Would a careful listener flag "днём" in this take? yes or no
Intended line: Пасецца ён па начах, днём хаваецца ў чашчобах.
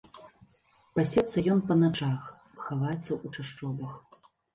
yes